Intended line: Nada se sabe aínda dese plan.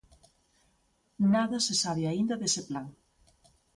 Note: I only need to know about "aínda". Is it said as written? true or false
true